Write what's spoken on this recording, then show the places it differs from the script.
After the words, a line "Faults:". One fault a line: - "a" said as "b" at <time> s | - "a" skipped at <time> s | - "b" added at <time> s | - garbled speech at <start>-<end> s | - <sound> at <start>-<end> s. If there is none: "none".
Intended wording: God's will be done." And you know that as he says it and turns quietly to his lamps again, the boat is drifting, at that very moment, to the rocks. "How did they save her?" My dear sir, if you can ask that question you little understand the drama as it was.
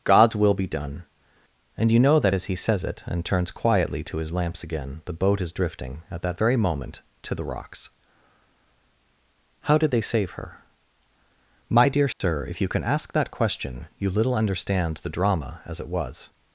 God's will be done." And you know that as he says it and turns quietly to his lamps again, the boat is drifting, at that very moment, to the rocks. "How did they save her?" My dear sir, if you can ask that question you little understand the drama as it was.
Faults:
- dropout at 12.1-12.2 s